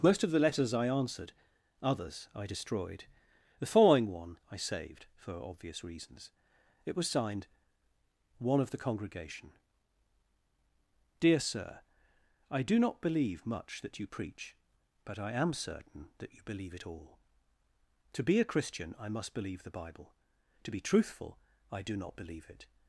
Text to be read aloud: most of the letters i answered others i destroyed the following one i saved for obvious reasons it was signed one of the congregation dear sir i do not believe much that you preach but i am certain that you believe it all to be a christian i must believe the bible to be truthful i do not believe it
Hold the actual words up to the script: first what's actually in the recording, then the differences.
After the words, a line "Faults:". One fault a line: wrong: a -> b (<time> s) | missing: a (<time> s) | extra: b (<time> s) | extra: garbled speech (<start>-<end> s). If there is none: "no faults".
most of the letters i answered others i destroyed the following one i saved for obvious reasons it was signed one of the congregation dear sir i do not believe much that you preach but i am certain that you believe it all to be a christian i must believe the bible to be truthful i do not believe it
Faults:
no faults